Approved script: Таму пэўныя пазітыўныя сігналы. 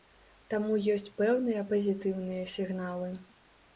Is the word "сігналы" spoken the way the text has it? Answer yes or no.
yes